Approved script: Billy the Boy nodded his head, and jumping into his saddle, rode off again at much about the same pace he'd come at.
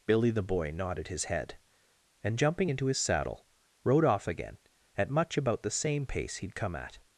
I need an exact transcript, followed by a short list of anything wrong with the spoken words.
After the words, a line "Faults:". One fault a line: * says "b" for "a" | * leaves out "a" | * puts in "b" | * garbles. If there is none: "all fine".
Billy the Boy nodded his head, and jumping into his saddle, rode off again at much about the same pace he'd come at.
Faults:
all fine